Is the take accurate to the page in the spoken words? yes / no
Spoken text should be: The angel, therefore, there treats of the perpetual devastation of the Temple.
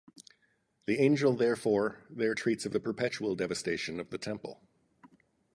yes